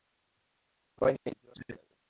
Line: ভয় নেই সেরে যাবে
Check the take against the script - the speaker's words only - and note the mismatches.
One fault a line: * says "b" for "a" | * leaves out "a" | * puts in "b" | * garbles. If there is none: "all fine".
* puts in "জ্বর"